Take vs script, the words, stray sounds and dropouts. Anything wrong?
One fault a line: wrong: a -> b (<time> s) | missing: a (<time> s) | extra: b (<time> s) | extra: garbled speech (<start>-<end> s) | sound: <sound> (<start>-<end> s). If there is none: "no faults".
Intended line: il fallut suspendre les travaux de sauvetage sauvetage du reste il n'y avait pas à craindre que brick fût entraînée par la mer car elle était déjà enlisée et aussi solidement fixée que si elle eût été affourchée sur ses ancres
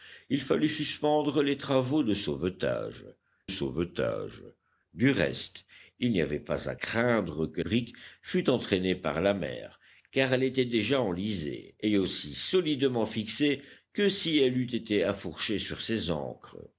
no faults